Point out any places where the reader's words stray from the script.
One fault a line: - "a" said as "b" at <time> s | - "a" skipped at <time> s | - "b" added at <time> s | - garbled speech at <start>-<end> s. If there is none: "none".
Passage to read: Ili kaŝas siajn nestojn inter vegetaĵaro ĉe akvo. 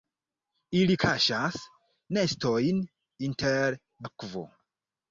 - "siajn" skipped at 1.6 s
- "vegetaĵaro ĉe" skipped at 3.8 s